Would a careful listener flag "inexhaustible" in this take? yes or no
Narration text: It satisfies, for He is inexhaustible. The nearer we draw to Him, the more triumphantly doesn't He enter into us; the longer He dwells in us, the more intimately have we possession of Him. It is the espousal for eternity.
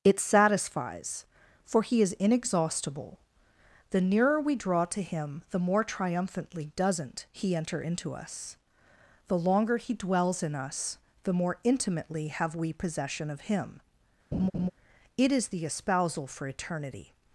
no